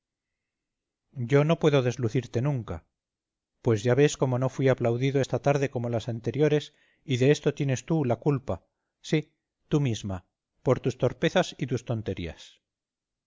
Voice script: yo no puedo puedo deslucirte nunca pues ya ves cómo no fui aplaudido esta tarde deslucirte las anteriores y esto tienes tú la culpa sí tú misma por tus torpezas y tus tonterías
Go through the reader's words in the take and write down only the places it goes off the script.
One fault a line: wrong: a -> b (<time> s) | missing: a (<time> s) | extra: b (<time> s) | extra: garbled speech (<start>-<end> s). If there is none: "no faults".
missing: puedo (1.8 s)
wrong: deslucirte -> como (5.7 s)
extra: de (7.2 s)